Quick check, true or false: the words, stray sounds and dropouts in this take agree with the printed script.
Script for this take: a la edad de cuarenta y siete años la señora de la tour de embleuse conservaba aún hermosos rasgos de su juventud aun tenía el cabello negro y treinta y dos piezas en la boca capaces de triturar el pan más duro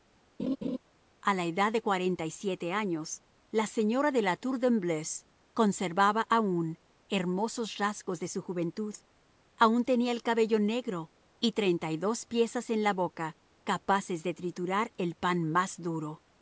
false